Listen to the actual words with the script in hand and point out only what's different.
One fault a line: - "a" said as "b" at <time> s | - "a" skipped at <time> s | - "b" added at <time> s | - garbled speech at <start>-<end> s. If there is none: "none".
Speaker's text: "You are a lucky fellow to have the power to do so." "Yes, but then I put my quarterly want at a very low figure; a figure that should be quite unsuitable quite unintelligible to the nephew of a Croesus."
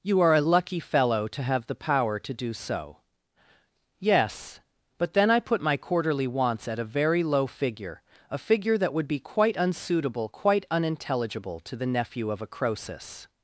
- "want" said as "wants" at 6.3 s
- "should" said as "would" at 8.9 s